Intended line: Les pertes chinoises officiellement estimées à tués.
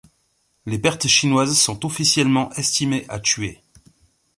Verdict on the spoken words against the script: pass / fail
fail